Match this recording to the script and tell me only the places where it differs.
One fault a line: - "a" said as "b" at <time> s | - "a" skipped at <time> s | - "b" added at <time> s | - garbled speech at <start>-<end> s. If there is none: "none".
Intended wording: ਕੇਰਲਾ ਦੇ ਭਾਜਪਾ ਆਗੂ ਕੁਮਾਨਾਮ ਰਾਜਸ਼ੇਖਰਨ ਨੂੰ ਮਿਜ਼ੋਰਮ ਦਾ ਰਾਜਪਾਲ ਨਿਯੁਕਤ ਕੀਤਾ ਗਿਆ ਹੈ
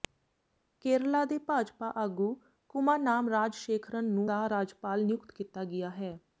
- "ਮਿਜ਼ੋਰਮ" skipped at 4.3 s